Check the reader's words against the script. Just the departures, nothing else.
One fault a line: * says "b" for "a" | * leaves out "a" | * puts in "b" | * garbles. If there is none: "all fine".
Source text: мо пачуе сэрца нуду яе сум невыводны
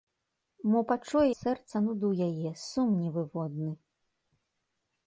all fine